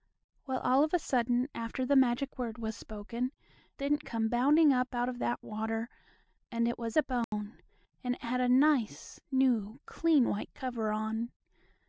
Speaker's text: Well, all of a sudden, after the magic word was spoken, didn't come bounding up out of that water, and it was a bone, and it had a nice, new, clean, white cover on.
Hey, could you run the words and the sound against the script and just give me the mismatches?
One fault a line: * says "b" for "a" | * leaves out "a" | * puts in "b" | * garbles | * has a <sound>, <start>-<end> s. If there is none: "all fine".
* has a dropout, 7.2-7.3 s